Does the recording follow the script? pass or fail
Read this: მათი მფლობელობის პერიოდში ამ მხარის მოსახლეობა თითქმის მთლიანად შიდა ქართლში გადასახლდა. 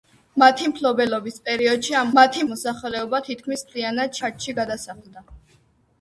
fail